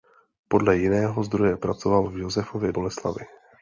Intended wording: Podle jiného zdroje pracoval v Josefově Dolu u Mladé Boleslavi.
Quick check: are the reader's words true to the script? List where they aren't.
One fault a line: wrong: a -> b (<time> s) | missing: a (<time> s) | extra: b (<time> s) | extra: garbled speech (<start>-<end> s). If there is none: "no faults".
missing: Dolu u Mladé (2.7 s)